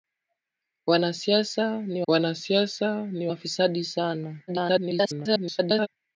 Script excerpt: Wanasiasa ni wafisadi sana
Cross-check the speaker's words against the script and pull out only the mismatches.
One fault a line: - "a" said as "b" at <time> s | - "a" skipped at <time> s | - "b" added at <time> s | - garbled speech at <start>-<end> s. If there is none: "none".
- "wanasiasa ni" added at 2.1 s
- garbled speech at 4.5-5.9 s